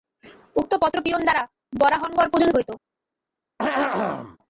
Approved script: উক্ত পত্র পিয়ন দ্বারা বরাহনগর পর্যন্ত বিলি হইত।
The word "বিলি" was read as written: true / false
false